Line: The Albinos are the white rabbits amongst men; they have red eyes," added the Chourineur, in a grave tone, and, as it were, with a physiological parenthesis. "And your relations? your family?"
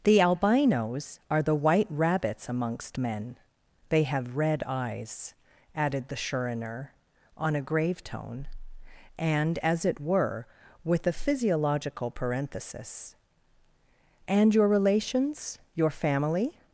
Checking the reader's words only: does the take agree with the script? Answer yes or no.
no